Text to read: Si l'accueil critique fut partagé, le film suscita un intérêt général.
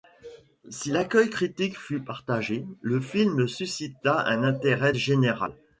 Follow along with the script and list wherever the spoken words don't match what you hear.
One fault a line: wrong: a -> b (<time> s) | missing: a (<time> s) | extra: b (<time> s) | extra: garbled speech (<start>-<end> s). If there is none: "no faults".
no faults